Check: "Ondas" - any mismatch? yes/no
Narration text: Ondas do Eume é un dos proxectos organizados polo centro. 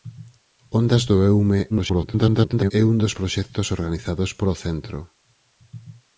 no